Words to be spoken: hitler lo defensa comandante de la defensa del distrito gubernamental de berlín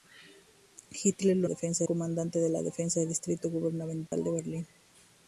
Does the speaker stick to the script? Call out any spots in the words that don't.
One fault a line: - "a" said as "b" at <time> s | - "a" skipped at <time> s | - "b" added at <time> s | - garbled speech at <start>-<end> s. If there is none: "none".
none